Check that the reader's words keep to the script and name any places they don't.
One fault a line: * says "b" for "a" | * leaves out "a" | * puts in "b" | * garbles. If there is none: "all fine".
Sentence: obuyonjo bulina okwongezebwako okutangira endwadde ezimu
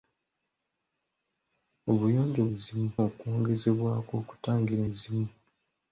* says "ezimu" for "bulina"
* leaves out "endwadde"